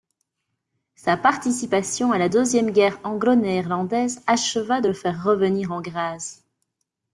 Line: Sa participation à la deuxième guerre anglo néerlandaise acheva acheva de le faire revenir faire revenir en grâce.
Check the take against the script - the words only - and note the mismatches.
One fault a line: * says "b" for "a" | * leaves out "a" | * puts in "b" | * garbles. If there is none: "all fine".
* leaves out "acheva"
* leaves out "faire revenir"